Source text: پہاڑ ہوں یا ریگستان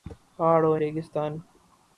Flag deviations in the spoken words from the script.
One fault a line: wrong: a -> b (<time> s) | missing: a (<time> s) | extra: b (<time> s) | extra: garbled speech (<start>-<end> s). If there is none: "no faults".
missing: یا (0.8 s)